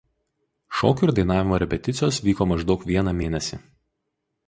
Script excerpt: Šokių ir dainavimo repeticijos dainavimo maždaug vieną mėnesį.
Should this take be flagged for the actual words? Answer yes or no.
yes